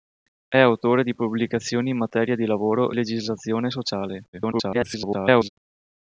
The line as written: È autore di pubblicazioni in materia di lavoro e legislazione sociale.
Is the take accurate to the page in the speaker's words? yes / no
no